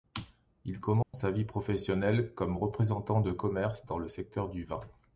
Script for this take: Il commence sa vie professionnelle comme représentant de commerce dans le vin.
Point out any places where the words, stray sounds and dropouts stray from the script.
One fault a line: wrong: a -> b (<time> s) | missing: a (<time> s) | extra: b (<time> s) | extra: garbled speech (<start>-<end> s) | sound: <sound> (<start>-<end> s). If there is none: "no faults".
sound: dropout (1.0-1.1 s)
extra: secteur du (4.1 s)